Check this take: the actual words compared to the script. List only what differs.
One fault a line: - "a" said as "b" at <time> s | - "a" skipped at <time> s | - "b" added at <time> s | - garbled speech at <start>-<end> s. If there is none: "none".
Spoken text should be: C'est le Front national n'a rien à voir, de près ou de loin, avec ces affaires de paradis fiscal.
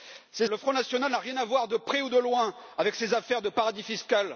none